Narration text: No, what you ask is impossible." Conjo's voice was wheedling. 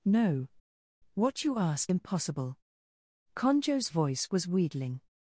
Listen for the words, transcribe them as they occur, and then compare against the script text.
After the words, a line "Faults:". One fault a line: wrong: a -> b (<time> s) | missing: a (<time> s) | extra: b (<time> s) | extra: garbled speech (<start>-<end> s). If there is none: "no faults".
No, what you ask impossible." Conjo's voice was wheedling.
Faults:
missing: is (1.9 s)